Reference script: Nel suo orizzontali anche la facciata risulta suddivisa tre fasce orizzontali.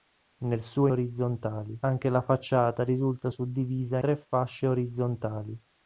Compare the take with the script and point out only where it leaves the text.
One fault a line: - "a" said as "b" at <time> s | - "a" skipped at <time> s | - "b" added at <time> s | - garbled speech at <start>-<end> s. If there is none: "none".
none